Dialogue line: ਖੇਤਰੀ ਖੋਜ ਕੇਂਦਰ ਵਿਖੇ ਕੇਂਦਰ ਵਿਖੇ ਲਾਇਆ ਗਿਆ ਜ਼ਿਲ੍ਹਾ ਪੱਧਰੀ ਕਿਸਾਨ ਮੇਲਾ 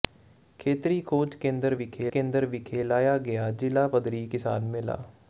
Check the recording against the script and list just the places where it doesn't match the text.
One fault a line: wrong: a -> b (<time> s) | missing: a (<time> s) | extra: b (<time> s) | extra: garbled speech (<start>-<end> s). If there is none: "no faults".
no faults